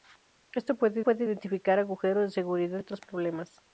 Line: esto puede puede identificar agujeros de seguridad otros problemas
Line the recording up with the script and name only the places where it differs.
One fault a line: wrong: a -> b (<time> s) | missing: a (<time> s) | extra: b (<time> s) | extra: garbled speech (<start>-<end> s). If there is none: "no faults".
no faults